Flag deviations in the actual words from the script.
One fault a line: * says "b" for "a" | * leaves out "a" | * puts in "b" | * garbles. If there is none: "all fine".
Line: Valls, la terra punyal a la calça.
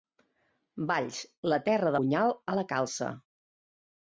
all fine